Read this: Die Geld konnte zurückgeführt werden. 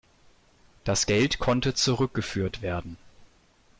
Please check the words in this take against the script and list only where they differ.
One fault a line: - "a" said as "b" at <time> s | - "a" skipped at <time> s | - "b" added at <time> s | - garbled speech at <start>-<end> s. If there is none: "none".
- "Die" said as "Das" at 0.8 s